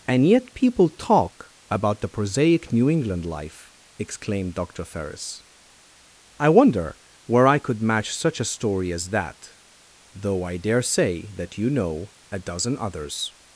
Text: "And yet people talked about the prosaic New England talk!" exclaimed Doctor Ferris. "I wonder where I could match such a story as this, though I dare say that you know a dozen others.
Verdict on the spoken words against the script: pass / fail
fail